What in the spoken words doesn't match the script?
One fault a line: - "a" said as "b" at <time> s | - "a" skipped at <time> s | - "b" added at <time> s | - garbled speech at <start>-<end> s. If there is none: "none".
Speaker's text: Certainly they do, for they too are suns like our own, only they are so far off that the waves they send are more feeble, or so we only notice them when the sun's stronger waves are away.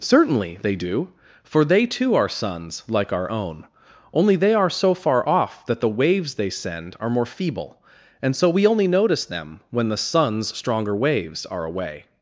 - "or" said as "and" at 8.2 s